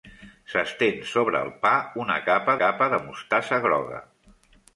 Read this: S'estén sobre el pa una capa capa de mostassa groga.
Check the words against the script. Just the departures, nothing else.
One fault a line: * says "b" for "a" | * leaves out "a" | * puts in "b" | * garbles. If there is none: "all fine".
all fine